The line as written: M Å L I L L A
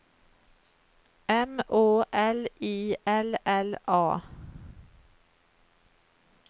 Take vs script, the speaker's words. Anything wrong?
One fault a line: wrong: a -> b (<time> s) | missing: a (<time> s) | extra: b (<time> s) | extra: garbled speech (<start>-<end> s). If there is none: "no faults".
no faults